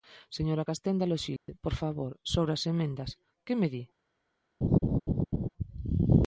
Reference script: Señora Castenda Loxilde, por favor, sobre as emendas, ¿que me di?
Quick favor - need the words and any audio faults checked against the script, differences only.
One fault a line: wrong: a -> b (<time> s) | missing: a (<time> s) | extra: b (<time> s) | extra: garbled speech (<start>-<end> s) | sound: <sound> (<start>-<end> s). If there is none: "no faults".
sound: dropout (1.4-1.5 s)
sound: laugh (4.6-5.5 s)